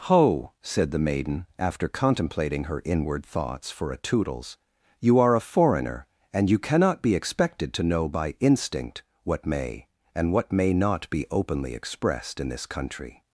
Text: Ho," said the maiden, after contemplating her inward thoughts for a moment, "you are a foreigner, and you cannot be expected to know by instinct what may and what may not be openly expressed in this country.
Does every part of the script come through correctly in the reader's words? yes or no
no